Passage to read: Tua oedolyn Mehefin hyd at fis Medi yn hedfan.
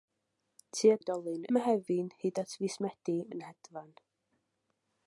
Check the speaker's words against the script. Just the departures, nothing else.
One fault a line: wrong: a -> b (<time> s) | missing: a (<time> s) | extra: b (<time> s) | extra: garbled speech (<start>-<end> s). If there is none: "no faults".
no faults